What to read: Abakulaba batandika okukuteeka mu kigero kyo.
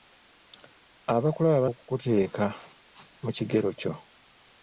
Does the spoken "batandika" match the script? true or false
false